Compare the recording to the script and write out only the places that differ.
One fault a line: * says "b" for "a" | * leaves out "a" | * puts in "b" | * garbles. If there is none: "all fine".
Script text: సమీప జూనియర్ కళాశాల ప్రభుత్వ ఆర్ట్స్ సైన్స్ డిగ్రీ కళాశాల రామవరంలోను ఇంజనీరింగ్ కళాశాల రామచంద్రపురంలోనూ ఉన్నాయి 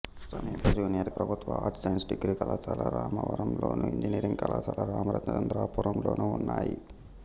* leaves out "కళాశాల"